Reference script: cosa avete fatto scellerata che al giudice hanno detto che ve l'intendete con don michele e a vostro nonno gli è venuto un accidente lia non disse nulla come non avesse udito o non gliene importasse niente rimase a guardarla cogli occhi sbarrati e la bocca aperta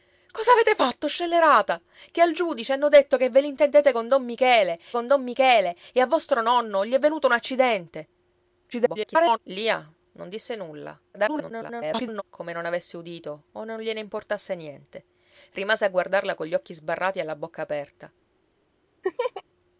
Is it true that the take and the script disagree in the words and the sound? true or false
true